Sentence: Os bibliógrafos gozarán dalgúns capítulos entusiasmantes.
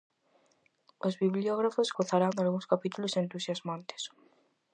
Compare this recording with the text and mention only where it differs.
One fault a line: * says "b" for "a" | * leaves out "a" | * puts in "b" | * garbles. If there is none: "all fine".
all fine